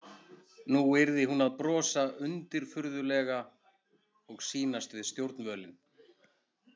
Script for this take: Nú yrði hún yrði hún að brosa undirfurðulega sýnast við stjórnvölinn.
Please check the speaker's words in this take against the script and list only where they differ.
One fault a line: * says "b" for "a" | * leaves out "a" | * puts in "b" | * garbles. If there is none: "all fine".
* leaves out "yrði hún"
* puts in "og"